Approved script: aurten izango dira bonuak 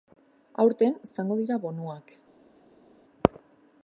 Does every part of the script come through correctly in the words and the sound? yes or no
yes